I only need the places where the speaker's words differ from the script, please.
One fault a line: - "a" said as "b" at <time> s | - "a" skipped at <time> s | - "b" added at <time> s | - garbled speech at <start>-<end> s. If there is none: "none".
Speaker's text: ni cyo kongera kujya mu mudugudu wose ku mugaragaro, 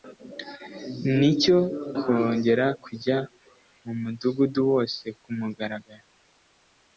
none